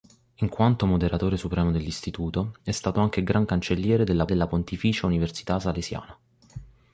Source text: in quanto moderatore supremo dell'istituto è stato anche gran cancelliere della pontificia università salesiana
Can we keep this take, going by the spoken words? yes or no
no